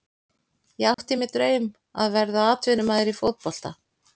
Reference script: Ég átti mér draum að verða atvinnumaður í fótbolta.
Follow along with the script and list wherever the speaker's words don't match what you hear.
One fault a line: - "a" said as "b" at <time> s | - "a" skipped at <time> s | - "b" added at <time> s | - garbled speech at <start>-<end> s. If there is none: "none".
none